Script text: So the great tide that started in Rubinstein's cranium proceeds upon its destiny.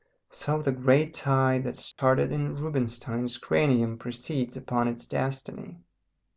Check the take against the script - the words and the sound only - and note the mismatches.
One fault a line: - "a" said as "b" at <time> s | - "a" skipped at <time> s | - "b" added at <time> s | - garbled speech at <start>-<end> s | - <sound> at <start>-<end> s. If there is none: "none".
- dropout at 1.9-2.0 s